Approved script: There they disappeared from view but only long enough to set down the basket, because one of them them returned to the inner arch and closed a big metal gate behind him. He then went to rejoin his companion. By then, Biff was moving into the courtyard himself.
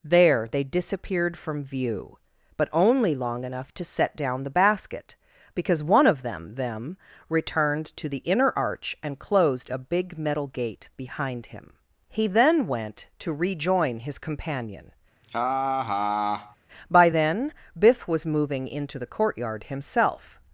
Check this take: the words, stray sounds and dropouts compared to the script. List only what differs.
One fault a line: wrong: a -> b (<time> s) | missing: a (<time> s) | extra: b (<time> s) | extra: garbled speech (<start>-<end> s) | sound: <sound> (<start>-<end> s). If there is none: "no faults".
sound: laugh (15.2-16.6 s)